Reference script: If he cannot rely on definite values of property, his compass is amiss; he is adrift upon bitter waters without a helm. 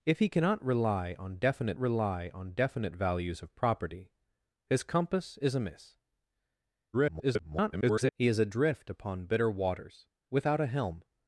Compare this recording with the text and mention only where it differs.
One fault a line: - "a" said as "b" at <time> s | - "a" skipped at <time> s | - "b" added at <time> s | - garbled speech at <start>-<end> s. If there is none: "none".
- "rely on definite" added at 1.8 s
- garbled speech at 6.9-8.1 s